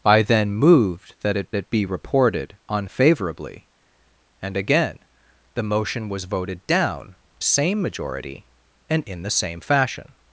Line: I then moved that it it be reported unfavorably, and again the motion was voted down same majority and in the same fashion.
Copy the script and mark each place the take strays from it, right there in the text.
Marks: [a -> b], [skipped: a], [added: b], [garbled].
I then moved that it it be reported unfavorably, and again the motion was voted down same majority and in the same fashion.